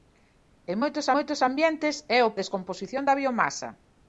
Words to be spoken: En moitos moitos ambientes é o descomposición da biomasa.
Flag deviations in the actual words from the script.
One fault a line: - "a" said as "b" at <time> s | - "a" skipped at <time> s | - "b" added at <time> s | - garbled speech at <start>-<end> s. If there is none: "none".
none